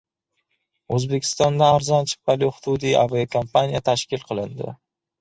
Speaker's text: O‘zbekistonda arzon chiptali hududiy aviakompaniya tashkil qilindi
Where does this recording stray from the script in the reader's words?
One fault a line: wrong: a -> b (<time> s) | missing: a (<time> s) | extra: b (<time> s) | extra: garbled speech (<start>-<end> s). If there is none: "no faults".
no faults